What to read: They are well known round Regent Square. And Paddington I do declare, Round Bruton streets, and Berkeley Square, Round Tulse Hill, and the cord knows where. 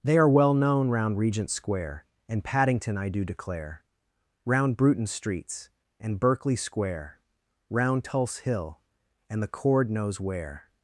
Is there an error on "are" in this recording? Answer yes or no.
no